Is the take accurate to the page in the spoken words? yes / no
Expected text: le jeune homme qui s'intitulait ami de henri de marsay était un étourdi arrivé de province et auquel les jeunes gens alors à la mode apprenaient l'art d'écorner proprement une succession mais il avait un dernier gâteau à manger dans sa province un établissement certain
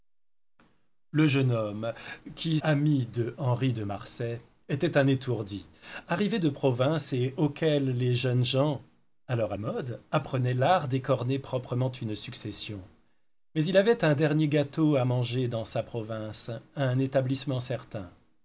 no